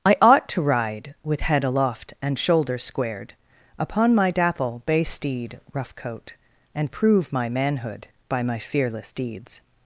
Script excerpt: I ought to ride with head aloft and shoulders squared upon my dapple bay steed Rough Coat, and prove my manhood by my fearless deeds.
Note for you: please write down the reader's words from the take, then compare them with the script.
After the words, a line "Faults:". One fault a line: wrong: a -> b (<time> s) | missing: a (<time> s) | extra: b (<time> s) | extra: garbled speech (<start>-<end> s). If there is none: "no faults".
I ought to ride with head aloft and shoulders squared upon my dapple bay steed Rough Coat, and prove my manhood by my fearless deeds.
Faults:
no faults